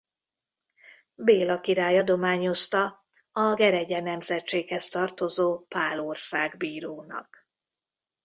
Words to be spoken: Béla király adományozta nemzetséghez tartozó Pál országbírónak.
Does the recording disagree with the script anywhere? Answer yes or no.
yes